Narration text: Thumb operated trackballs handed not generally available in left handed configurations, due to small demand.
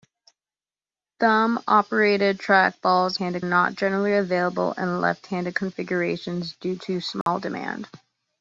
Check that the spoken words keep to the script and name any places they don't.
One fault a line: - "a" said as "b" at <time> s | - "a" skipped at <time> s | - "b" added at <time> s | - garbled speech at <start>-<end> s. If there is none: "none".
none